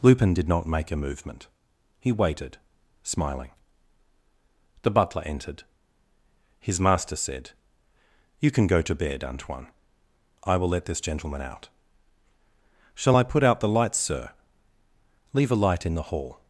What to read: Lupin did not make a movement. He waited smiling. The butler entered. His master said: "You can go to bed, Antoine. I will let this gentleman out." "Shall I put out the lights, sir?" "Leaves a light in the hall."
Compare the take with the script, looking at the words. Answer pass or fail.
fail